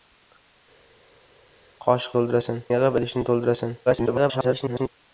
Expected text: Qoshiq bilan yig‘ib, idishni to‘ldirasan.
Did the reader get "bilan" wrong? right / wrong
wrong